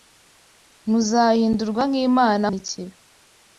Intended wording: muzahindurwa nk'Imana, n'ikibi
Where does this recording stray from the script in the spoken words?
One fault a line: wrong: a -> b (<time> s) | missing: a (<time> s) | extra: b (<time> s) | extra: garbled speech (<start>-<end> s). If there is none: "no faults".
no faults